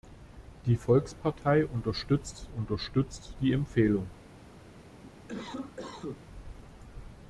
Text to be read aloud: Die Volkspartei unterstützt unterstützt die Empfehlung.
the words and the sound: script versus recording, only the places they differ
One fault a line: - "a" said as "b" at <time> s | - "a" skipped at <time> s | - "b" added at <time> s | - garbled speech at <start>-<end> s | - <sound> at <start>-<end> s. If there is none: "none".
- cough at 4.8-6.2 s